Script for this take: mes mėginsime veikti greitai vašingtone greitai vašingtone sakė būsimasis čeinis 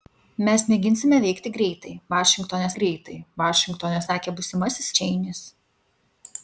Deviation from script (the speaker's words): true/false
false